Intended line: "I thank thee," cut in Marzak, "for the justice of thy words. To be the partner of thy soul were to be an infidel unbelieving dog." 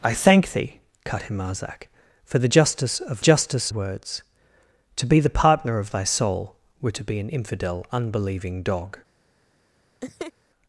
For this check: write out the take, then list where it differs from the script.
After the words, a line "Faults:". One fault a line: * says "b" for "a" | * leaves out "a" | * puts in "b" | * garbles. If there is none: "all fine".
"I thank thee," cut in Marzak, "for the justice of justice words. To be the partner of thy soul were to be an infidel unbelieving dog."
Faults:
* says "justice" for "thy"